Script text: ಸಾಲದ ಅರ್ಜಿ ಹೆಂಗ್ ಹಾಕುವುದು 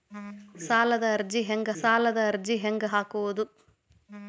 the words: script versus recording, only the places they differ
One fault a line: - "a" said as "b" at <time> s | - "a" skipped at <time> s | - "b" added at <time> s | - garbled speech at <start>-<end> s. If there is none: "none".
- "ಸಾಲದ ಅರ್ಜಿ ಹೆಂಗ್" added at 1.8 s